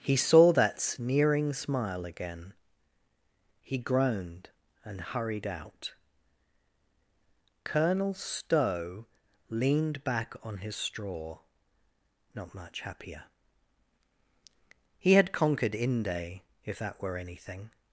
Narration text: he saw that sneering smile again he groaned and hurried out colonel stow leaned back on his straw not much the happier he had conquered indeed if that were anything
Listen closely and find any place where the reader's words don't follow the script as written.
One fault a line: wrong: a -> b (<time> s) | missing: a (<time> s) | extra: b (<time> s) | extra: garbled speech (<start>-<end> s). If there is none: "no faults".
missing: the (12.8 s)
wrong: indeed -> inde (15.8 s)